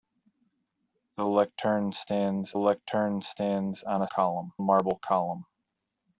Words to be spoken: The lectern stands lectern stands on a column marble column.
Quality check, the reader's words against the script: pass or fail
pass